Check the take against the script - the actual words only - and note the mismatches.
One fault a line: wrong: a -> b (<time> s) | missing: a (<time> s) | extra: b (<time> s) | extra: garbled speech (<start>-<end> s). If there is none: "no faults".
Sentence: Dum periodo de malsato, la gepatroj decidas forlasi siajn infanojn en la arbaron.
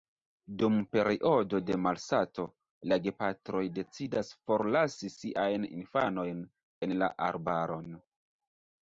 no faults